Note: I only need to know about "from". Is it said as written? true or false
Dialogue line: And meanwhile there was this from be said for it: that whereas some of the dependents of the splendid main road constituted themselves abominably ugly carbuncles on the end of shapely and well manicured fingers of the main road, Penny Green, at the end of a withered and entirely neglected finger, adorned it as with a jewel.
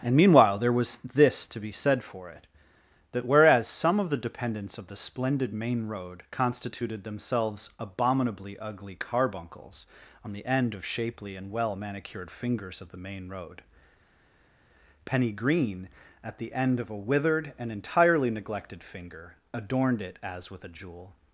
false